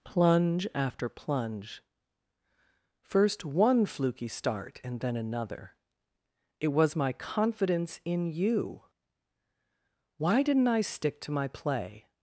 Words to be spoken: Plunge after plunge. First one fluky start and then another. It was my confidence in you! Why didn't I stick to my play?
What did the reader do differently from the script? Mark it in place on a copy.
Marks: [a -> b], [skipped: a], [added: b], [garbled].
Plunge after plunge. First one fluky start and then another. It was my confidence in you! Why didn't I stick to my play?